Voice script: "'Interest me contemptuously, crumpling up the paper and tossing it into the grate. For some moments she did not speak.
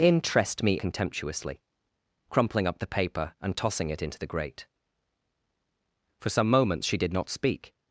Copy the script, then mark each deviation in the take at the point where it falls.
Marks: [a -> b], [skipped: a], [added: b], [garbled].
"'Interest me contemptuously, crumpling up the paper and tossing it into the grate. For some moments she did not speak.